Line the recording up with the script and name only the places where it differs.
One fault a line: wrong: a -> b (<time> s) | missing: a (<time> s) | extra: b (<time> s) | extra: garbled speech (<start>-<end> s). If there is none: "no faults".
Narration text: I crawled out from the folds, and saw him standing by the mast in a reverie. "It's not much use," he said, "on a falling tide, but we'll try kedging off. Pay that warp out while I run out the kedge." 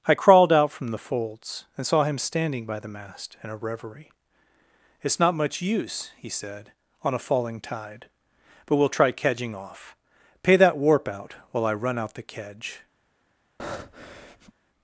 no faults